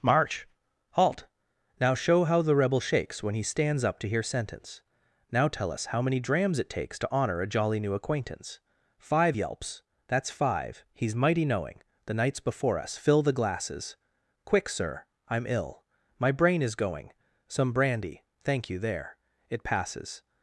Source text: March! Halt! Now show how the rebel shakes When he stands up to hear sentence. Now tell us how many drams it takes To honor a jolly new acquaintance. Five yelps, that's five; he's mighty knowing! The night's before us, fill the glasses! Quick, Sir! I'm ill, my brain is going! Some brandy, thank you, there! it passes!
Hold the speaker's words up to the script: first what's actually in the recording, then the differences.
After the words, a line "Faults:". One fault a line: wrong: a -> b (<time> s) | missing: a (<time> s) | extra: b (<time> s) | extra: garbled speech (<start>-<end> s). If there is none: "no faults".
March! Halt! Now show how the rebel shakes When he stands up to hear sentence. Now tell us how many drams it takes To honor a jolly new acquaintance. Five yelps, that's five; he's mighty knowing! The night's before us, fill the glasses! Quick, Sir! I'm ill, my brain is going! Some brandy, thank you, there! it passes!
Faults:
no faults